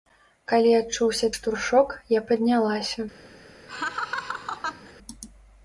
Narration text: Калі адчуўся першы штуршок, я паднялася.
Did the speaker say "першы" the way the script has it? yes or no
no